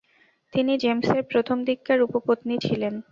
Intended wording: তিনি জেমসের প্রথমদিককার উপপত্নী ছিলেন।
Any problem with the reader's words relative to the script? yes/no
no